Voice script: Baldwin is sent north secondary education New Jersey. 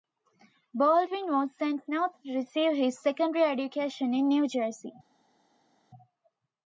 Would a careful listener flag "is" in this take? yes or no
yes